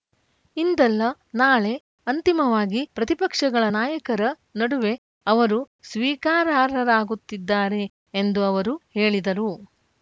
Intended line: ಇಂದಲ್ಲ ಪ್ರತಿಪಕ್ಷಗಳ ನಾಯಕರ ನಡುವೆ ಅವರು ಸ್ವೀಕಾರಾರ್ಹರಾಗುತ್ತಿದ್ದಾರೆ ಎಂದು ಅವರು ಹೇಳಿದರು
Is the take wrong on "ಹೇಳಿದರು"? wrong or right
right